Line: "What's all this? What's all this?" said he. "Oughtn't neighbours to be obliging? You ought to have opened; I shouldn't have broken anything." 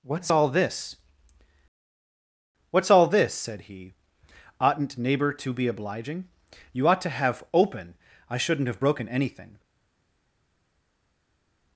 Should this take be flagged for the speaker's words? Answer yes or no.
yes